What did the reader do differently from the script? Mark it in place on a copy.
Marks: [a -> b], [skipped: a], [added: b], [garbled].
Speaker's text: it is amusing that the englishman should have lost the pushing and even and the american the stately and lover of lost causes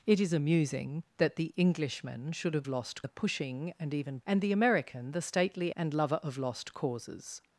it is amusing that the englishman should have lost the pushing and even and the american the stately and lover of lost causes